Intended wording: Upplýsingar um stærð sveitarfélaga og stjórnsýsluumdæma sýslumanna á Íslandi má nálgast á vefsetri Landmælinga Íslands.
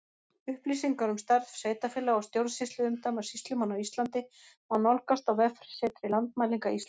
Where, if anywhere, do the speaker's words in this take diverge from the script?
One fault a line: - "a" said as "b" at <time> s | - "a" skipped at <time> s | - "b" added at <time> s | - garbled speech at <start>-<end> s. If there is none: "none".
none